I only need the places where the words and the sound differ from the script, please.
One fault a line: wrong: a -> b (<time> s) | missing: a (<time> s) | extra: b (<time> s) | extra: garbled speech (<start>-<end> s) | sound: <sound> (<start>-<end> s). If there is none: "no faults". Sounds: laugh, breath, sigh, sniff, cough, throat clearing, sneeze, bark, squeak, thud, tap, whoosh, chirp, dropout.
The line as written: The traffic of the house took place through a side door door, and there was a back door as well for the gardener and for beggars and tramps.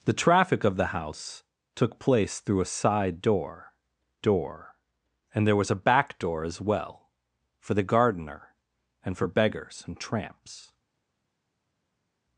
no faults